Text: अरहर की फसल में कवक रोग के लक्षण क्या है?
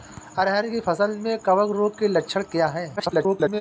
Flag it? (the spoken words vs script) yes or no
yes